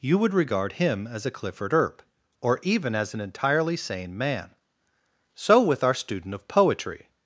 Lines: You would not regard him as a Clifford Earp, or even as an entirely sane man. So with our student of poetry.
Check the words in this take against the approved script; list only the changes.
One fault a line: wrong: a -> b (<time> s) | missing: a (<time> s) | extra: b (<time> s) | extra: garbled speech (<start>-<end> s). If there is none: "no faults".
missing: not (0.3 s)